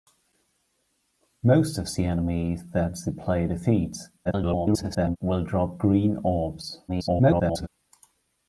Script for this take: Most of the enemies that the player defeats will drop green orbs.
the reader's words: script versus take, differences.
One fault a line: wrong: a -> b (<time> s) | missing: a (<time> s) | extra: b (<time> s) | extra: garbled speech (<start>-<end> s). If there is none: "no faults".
extra: garbled speech (4.2-5.2 s)
extra: garbled speech (6.9-7.7 s)